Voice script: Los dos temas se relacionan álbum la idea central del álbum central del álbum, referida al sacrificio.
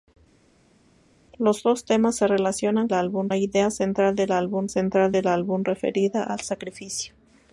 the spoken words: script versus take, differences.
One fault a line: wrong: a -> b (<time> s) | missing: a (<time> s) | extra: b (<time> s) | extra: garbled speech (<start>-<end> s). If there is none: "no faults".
no faults